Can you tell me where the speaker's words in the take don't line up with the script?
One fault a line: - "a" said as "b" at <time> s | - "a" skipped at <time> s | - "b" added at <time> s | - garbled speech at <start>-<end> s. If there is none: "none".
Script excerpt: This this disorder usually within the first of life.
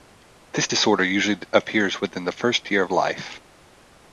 - "this" skipped at 0.7 s
- "appears" added at 1.5 s
- "year" added at 2.7 s